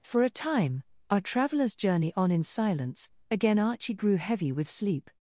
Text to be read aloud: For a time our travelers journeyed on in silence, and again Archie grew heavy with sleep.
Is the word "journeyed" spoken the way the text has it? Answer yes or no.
no